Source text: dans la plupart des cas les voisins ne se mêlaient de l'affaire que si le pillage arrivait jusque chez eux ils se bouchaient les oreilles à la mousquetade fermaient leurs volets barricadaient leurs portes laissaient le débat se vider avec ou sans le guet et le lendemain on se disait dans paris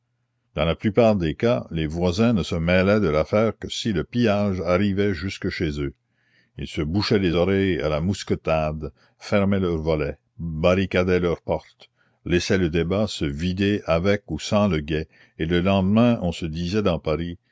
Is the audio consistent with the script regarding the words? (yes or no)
yes